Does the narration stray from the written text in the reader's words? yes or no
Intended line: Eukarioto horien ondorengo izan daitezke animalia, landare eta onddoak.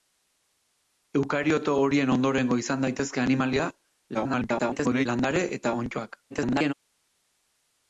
yes